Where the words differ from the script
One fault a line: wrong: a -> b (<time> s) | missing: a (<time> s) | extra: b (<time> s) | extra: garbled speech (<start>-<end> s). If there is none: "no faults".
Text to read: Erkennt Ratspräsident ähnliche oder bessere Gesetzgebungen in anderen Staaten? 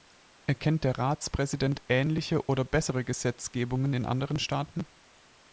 extra: der (0.8 s)